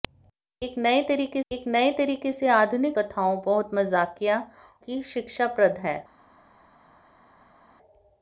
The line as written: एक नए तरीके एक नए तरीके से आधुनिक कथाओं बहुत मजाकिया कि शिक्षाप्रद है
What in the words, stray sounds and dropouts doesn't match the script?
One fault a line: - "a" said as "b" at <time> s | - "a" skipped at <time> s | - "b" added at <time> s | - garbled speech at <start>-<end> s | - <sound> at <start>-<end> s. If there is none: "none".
none